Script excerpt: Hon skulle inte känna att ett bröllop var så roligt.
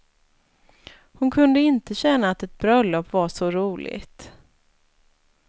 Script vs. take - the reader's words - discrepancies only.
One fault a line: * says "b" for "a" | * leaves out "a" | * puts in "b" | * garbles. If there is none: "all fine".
* says "kunde" for "skulle"